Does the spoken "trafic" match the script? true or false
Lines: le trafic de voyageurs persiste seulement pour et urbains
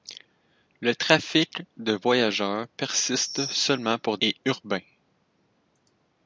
true